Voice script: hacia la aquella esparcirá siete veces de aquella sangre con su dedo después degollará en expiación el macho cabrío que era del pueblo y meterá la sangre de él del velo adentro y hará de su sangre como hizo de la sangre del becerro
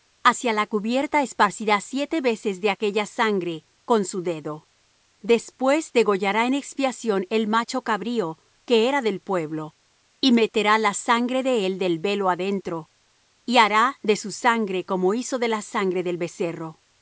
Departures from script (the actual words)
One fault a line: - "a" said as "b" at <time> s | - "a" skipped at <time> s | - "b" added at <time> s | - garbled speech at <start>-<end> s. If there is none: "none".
- "aquella" said as "cubierta" at 0.7 s